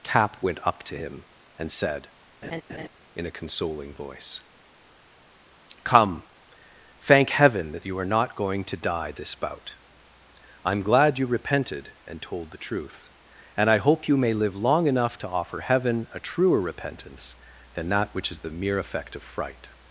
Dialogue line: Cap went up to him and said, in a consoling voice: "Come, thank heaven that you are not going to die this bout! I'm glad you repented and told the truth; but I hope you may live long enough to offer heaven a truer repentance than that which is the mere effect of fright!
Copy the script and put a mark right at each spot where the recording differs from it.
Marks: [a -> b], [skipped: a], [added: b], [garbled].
Cap went up to him and said, in a consoling voice: "Come, thank heaven that you are not going to die this bout! I'm glad you repented and told the truth; [but -> and] I hope you may live long enough to offer heaven a truer repentance than that which is the mere effect of fright!